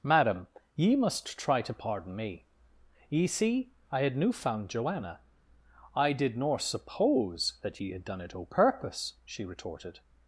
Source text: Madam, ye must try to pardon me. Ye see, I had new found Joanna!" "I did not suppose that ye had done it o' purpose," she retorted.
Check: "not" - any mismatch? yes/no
yes